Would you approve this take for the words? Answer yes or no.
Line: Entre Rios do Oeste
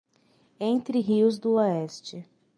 yes